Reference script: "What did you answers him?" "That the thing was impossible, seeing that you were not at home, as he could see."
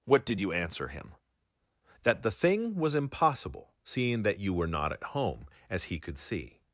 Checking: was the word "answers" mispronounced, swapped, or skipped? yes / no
yes